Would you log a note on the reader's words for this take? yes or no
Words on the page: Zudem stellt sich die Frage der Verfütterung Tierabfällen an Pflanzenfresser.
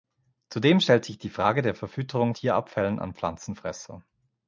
no